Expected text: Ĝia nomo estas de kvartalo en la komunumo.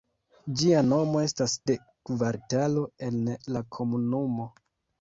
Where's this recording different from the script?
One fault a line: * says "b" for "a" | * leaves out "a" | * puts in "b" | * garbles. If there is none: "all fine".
all fine